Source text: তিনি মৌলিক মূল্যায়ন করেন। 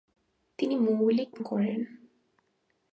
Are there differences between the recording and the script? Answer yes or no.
yes